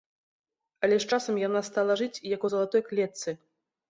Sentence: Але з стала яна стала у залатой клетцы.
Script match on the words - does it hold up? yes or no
no